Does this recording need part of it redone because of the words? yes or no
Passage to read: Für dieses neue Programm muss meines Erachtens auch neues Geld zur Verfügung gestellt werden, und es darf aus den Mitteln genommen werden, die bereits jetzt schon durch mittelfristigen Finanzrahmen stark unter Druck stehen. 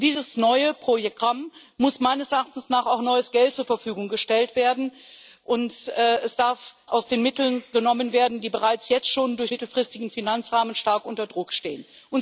no